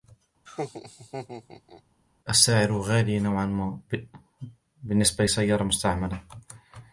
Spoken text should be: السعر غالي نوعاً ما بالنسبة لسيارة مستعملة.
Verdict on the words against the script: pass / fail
pass